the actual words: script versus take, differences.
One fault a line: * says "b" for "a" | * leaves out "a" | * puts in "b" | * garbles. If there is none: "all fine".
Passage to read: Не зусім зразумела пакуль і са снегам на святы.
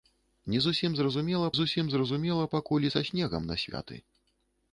* puts in "зусім зразумела"